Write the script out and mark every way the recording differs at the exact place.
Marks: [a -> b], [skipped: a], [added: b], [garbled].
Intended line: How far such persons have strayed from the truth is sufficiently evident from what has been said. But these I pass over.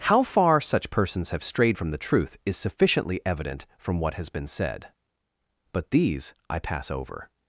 How far such persons have strayed from the truth is sufficiently evident from what has been said. But these I pass over.